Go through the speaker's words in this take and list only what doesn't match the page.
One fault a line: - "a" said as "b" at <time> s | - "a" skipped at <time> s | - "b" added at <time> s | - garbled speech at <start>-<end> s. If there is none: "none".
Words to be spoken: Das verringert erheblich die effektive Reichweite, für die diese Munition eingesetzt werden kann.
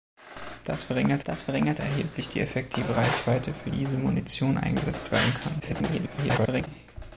- "das verringert" added at 1.2 s
- "die" skipped at 3.7 s
- garbled speech at 5.6-6.7 s